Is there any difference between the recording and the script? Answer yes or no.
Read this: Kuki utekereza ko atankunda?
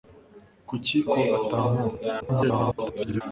yes